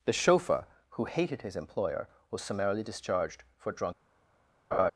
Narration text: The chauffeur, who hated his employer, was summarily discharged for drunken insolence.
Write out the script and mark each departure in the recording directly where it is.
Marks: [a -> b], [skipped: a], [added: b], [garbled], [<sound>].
The chauffeur, who hated his employer, was summarily discharged for [drunken insolence. -> drunk] [laugh]